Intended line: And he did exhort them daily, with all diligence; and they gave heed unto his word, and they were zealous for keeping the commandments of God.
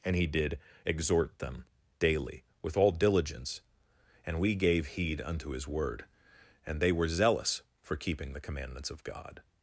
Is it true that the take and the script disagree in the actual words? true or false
true